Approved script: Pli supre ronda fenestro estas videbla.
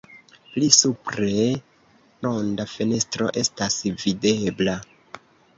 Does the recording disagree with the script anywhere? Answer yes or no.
no